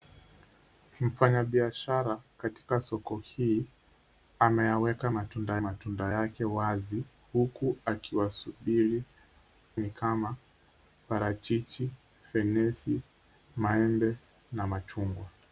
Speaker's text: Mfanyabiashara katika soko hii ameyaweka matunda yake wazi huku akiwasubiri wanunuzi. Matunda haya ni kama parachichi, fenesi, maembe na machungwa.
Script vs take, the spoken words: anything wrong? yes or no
yes